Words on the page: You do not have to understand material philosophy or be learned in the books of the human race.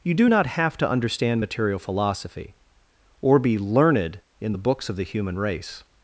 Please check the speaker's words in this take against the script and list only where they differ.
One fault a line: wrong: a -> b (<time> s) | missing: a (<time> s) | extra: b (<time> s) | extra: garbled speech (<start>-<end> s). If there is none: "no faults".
no faults